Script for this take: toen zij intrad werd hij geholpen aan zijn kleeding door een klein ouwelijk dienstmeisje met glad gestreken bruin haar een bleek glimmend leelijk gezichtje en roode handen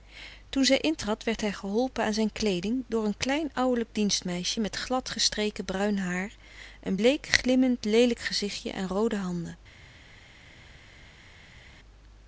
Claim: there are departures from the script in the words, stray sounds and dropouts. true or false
false